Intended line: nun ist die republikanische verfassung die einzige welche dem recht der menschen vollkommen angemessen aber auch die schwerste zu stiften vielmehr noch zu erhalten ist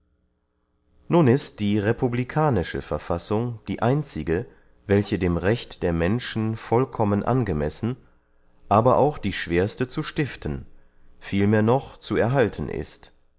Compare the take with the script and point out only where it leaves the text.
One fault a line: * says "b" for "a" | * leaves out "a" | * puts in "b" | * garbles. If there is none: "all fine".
all fine